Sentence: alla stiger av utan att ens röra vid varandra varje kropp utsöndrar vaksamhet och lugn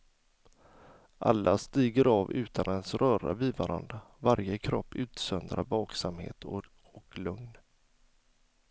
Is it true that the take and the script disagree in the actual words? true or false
false